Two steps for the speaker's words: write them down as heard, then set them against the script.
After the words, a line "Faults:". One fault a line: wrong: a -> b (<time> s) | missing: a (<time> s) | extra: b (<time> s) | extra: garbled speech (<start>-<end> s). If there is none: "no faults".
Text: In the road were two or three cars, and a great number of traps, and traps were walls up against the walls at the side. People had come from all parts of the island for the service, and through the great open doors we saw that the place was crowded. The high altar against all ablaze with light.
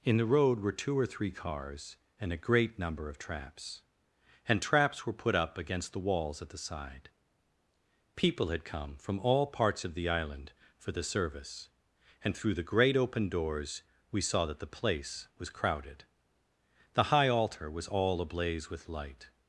In the road were two or three cars, and a great number of traps, and traps were put up against the walls at the side. People had come from all parts of the island for the service, and through the great open doors we saw that the place was crowded. The high altar was all ablaze with light.
Faults:
wrong: walls -> put (5.1 s)
wrong: against -> was (17.7 s)